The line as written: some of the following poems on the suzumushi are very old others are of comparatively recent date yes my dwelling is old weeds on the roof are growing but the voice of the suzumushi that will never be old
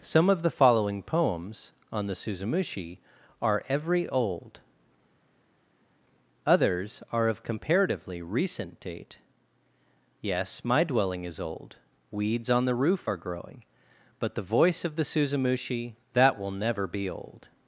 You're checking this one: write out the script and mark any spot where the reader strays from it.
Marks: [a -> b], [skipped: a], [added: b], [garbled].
some of the following poems on the suzumushi are [very -> every] old others are of comparatively recent date yes my dwelling is old weeds on the roof are growing but the voice of the suzumushi that will never be old